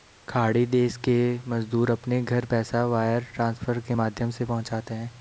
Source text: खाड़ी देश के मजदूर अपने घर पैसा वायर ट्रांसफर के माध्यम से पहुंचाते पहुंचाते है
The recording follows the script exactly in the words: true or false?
false